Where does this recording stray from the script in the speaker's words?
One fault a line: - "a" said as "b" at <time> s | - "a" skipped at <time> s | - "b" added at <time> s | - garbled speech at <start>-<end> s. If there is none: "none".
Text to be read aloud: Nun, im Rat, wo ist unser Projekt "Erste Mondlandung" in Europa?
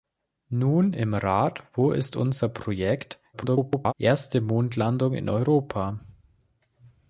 - garbled speech at 3.3-3.9 s